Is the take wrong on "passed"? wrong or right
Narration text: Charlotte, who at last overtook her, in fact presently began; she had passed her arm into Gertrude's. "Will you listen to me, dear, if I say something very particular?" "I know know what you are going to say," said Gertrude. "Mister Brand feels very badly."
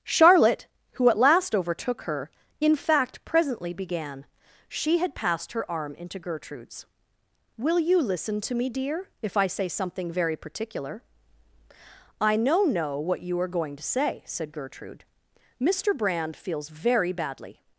right